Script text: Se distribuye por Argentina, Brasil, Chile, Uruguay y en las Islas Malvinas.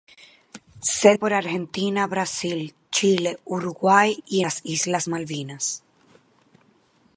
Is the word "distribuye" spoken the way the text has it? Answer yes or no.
no